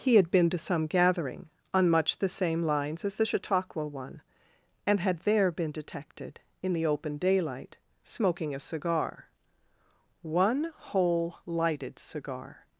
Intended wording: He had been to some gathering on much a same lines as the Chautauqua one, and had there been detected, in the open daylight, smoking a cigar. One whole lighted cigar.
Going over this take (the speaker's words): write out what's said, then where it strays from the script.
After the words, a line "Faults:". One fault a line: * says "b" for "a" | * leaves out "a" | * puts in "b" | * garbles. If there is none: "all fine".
He had been to some gathering on much the same lines as the Chautauqua one, and had there been detected, in the open daylight, smoking a cigar. One whole lighted cigar.
Faults:
* says "the" for "a"